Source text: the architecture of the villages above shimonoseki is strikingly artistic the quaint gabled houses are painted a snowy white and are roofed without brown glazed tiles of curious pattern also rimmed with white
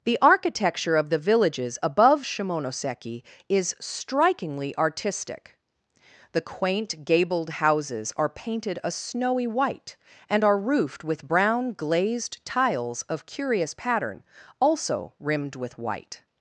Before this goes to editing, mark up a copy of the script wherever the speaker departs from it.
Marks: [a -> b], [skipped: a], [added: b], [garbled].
the architecture of the villages above shimonoseki is strikingly artistic the quaint gabled houses are painted a snowy white and are roofed [without -> with] brown glazed tiles of curious pattern also rimmed with white